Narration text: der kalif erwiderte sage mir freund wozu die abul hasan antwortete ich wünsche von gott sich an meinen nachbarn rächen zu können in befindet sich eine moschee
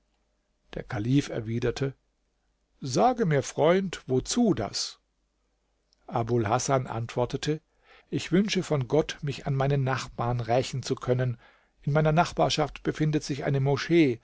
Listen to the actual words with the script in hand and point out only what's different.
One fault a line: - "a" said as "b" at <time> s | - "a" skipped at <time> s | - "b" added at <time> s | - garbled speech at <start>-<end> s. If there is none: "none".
- "die" said as "das" at 4.5 s
- "sich" said as "mich" at 9.2 s
- "meiner nachbarschaft" added at 11.9 s